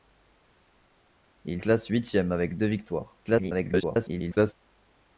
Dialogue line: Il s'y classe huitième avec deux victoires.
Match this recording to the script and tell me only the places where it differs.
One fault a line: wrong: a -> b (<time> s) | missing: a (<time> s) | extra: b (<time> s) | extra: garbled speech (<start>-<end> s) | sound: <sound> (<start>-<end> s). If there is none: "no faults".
missing: s'y (1.6 s)
extra: garbled speech (3.3-4.5 s)